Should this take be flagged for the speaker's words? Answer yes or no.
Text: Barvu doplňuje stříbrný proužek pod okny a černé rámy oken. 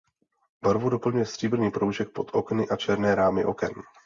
no